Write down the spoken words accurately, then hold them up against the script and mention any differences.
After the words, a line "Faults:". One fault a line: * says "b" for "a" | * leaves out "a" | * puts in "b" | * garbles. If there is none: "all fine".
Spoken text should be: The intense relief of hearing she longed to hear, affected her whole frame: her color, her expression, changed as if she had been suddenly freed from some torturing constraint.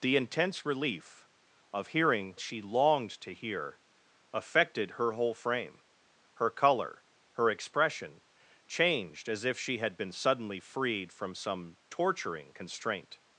The intense relief of hearing she longed to hear, affected her whole frame: her color, her expression, changed as if she had been suddenly freed from some torturing constraint.
Faults:
all fine